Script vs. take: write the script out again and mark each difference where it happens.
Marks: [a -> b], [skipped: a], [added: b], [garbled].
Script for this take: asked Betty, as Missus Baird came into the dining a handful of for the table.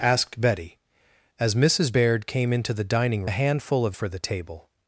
asked Betty, as Missus Baird came into the dining a handful of for the table.